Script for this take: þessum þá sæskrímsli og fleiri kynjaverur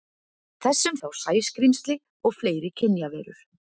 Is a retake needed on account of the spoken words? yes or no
no